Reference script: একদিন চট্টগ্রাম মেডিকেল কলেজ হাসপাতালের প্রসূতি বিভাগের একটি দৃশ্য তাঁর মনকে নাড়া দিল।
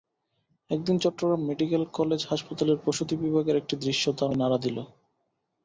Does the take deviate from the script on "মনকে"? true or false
true